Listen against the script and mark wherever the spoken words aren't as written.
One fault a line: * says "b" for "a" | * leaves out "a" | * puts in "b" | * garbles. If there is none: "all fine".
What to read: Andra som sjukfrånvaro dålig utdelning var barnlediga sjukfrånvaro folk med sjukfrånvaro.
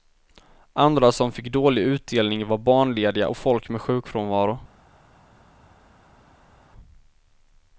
* says "fick" for "sjukfrånvaro"
* says "och" for "sjukfrånvaro"